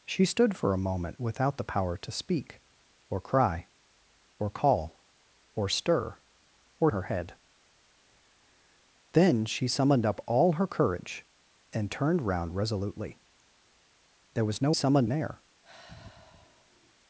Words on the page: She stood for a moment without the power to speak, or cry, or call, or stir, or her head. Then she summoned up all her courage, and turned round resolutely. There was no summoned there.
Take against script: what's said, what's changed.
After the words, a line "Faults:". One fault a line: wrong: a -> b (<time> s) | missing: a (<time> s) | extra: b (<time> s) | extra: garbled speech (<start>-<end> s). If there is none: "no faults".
She stood for a moment without the power to speak, or cry, or call, or stir, or her head. Then she summoned up all her courage, and turned round resolutely. There was no summoned there.
Faults:
no faults